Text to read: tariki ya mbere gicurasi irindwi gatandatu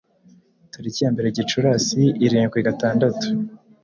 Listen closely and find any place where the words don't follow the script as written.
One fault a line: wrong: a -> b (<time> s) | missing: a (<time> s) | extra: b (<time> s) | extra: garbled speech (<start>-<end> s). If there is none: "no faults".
no faults